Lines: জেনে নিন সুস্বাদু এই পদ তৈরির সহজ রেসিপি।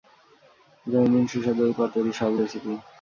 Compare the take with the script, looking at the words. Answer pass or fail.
pass